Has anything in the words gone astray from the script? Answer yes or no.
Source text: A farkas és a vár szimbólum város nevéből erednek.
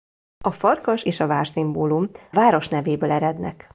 no